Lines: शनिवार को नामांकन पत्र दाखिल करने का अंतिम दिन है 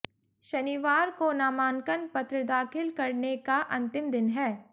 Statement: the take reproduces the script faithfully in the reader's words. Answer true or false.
true